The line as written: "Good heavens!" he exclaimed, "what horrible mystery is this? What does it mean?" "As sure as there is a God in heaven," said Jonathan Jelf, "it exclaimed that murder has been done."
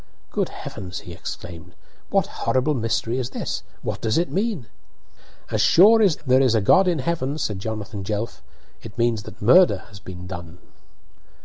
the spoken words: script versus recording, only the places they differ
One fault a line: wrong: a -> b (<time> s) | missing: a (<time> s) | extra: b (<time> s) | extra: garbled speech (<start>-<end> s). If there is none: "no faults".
wrong: exclaimed -> means (9.0 s)